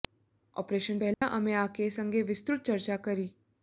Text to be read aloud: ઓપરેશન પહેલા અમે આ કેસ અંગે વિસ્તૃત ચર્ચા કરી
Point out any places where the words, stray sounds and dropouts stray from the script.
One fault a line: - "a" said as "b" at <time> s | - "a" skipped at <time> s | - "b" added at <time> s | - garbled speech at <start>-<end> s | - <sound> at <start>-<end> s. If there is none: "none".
- dropout at 1.1-1.2 s